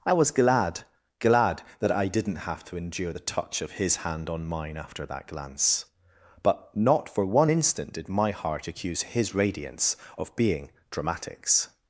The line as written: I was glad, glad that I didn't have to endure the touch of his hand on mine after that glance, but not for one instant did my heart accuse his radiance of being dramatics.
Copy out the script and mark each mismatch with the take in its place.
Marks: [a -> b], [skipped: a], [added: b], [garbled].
I was glad, glad that I didn't have to endure the touch of his hand on mine after that glance, but not for one instant did my heart accuse his radiance of being dramatics.